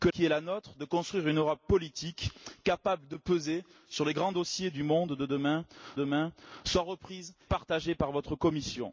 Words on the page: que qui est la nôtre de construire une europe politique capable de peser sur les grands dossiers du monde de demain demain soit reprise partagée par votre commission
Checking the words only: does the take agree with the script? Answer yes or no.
yes